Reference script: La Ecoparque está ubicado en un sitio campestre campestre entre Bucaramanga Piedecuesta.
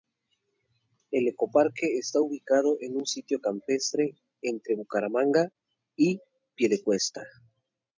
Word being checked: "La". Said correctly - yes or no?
no